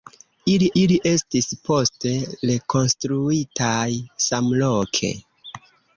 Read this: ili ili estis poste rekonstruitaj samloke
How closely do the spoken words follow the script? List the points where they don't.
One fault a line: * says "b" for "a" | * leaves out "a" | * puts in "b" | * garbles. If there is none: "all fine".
all fine